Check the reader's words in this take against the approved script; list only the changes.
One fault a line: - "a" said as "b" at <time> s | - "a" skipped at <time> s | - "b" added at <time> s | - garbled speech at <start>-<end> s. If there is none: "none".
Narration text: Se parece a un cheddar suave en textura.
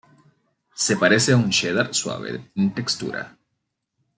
none